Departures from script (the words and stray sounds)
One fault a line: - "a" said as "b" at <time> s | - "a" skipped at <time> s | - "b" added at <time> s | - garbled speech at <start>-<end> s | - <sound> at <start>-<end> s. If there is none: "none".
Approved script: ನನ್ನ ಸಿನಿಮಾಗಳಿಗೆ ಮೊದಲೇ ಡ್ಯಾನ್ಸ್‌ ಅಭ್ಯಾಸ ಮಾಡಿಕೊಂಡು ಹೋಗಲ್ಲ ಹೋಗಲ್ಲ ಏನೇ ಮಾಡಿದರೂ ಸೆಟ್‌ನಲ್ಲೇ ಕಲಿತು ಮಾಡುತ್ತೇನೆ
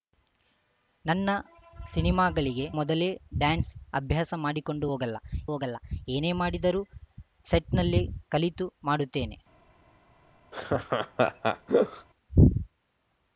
- laugh at 10.5-12.1 s